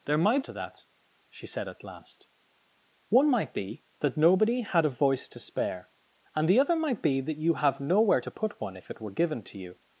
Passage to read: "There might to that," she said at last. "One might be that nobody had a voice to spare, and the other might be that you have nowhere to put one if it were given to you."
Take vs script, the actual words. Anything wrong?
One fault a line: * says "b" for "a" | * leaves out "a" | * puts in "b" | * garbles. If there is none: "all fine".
all fine